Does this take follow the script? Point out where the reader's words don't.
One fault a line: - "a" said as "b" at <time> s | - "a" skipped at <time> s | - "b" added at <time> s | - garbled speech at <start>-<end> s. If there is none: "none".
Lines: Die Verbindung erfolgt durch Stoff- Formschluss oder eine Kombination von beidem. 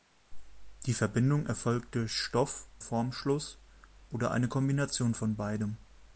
none